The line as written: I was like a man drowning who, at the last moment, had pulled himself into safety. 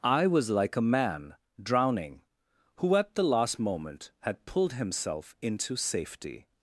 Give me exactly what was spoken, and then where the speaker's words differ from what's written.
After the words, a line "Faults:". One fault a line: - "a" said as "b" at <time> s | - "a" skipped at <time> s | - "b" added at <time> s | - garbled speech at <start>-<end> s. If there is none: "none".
I was like a man drowning who, at the last moment, had pulled himself into safety.
Faults:
none